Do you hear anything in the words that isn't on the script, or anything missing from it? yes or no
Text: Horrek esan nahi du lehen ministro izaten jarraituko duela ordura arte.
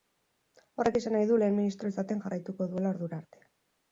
no